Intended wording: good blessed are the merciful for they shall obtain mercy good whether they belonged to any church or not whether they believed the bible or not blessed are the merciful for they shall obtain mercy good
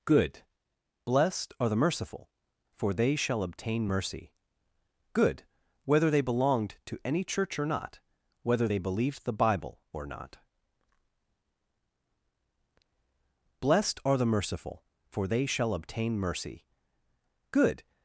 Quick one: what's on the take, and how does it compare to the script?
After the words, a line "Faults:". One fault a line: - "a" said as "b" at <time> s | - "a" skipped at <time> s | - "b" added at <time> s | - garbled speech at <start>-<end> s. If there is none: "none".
good blessed are the merciful for they shall obtain mercy good whether they belonged to any church or not whether they believed the bible or not blessed are the merciful for they shall obtain mercy good
Faults:
none